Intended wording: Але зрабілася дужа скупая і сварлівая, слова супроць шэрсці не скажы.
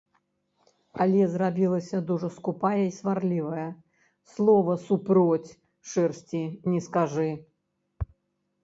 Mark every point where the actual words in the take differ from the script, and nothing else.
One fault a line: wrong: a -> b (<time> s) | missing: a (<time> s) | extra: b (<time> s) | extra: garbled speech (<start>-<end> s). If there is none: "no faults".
no faults